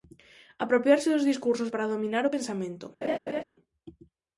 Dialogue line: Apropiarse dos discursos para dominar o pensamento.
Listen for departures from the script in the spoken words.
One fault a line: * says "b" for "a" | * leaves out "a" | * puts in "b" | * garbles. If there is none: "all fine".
all fine